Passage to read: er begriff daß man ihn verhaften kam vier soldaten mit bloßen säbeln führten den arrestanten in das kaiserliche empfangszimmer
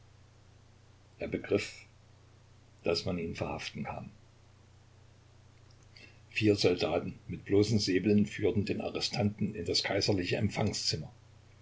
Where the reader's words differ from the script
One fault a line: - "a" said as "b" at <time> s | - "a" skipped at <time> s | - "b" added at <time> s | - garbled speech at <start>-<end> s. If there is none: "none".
none